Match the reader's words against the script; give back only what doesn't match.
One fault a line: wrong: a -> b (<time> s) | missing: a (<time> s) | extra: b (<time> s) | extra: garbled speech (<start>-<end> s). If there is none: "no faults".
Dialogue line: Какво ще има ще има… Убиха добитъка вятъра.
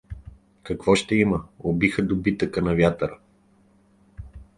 missing: ще има (1.4 s)
extra: на (2.6 s)